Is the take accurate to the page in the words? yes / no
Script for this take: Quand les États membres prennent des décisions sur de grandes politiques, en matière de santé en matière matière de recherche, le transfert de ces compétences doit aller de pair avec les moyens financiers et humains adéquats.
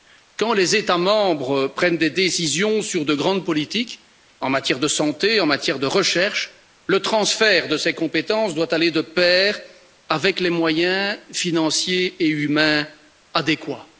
no